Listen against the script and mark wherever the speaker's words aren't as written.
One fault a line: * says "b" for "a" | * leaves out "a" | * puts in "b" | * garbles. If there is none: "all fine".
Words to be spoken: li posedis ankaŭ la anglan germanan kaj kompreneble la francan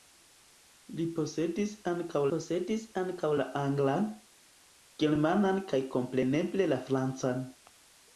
* puts in "posedis ankaŭ"